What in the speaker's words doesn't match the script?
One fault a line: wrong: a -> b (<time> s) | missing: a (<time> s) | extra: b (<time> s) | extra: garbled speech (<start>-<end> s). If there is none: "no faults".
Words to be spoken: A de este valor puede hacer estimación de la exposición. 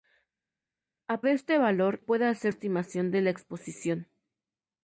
no faults